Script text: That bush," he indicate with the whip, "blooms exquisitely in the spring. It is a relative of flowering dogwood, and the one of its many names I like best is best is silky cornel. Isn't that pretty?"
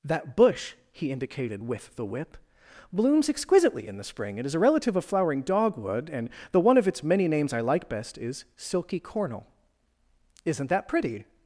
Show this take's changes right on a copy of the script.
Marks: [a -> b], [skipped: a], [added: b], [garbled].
That bush," he [indicate -> indicated] with the whip, "blooms exquisitely in the spring. It is a relative of flowering dogwood, and the one of its many names I like best is [skipped: best is] silky cornel. Isn't that pretty?"